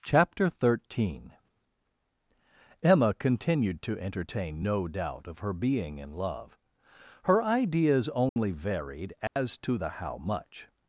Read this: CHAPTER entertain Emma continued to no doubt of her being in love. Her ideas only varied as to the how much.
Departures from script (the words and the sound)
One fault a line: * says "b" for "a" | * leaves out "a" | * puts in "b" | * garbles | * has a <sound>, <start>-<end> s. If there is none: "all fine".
* says "thirteen" for "entertain"
* puts in "entertain"
* has a dropout, 8.3-8.4 s
* has a dropout, 9.3-9.4 s